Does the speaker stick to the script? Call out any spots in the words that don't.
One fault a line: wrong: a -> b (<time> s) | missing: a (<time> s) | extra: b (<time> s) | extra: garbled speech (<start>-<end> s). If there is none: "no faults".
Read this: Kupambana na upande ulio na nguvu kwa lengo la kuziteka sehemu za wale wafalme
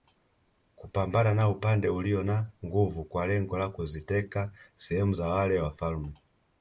no faults